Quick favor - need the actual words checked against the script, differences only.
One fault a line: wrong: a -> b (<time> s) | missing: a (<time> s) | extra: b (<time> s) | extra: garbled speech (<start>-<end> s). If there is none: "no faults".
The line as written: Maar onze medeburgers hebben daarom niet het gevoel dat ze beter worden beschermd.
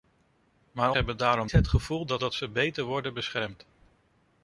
missing: onze medeburgers (0.9 s)
missing: niet (1.5 s)
extra: dat (2.2 s)